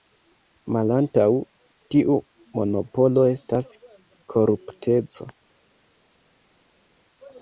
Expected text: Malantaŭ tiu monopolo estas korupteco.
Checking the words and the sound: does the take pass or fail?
pass